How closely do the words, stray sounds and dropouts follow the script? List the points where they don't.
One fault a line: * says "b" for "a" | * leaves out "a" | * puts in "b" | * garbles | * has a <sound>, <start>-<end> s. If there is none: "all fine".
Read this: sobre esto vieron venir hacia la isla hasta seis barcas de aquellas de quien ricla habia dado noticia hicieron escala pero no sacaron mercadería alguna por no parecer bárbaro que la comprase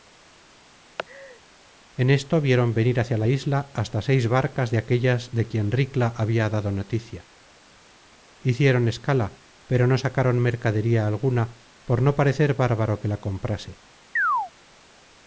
* has a laugh, 1.0-1.4 s
* says "en" for "sobre"
* has a chirp, 14.2-14.5 s